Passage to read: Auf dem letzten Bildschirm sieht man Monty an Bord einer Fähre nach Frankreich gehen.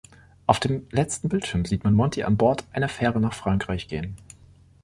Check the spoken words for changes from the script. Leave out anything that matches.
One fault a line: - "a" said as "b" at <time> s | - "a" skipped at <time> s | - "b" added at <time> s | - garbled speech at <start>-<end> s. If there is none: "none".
none